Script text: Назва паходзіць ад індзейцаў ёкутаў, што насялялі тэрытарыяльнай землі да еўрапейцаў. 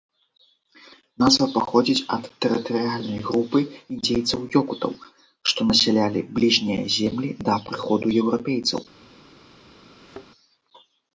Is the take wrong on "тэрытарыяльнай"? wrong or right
wrong